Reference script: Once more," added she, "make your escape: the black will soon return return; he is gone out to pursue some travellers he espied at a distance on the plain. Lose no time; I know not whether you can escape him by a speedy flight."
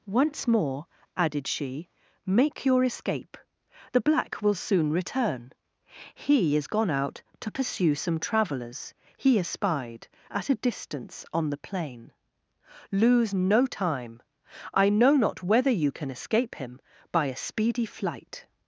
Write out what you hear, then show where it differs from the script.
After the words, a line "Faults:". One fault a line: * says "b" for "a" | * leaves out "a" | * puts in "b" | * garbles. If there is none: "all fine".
Once more," added she, "make your escape: the black will soon return; he is gone out to pursue some travellers he espied at a distance on the plain. Lose no time; I know not whether you can escape him by a speedy flight."
Faults:
* leaves out "return"